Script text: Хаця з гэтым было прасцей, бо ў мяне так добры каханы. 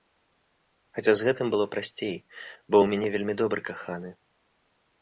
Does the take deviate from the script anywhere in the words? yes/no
yes